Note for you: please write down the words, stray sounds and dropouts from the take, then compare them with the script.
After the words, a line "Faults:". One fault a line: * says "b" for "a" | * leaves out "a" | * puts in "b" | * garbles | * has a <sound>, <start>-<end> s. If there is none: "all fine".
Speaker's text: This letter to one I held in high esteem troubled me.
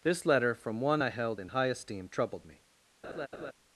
This letter from one I held in high esteem troubled me.
Faults:
* says "from" for "to"
* has a laugh, 3.0-3.5 s